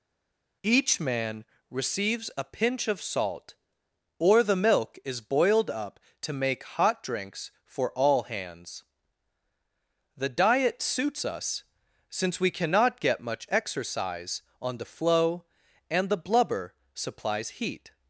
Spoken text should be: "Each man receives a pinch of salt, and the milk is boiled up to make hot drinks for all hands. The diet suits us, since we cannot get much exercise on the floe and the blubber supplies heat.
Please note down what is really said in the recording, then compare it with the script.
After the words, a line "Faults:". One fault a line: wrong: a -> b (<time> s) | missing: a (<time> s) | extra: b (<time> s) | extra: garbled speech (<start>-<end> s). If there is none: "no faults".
"Each man receives a pinch of salt, or the milk is boiled up to make hot drinks for all hands. The diet suits us, since we cannot get much exercise on the floe and the blubber supplies heat.
Faults:
wrong: and -> or (4.2 s)